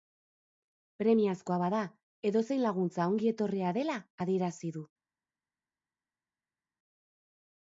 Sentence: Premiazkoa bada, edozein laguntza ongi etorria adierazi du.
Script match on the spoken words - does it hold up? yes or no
no